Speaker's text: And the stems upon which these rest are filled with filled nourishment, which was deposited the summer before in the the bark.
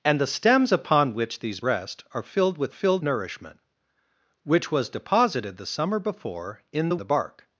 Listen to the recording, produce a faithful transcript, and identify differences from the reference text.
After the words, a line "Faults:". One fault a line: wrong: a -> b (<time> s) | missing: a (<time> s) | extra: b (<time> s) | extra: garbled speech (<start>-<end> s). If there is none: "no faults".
And the stems upon which these rest are filled with filled nourishment, which was deposited the summer before in the the bark.
Faults:
no faults